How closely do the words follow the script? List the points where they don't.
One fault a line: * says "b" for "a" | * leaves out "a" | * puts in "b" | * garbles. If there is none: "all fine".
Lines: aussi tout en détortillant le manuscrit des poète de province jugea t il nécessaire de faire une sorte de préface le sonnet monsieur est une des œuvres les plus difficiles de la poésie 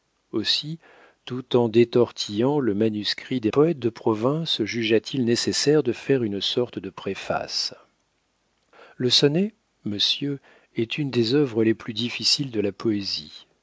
all fine